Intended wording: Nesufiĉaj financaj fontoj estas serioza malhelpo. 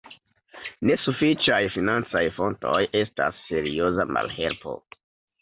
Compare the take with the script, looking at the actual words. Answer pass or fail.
pass